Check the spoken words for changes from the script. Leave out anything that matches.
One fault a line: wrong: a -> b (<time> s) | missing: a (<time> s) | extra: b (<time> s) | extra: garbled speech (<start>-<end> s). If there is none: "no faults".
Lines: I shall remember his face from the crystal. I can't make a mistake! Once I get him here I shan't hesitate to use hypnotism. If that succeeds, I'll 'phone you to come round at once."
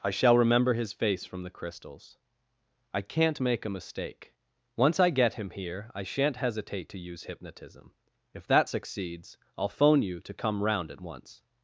wrong: crystal -> crystals (1.5 s)